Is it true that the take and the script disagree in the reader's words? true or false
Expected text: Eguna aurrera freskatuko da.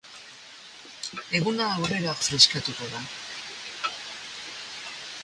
false